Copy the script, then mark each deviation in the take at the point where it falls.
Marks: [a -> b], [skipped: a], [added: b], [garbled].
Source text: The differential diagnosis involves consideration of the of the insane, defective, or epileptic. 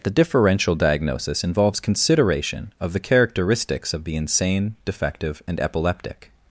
The differential diagnosis involves consideration of the [added: characteristics] of the insane, defective, [or -> and] epileptic.